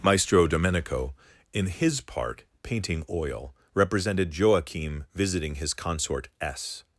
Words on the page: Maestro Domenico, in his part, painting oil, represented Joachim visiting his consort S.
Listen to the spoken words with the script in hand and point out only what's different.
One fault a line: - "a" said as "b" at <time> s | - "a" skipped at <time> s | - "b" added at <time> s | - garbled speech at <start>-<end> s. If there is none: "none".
none